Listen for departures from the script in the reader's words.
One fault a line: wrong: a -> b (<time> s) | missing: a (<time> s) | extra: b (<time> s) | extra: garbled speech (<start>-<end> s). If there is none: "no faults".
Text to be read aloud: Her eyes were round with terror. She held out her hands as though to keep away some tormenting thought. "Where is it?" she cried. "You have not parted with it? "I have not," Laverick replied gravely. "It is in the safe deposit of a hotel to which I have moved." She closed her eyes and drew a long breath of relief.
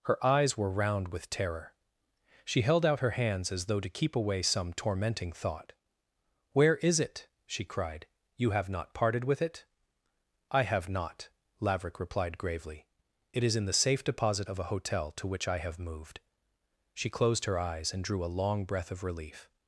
no faults